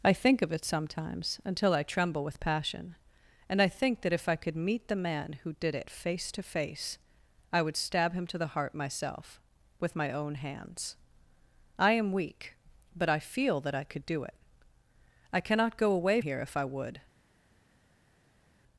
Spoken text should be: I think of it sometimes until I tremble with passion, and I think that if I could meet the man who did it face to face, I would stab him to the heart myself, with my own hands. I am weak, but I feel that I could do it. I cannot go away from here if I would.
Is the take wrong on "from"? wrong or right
wrong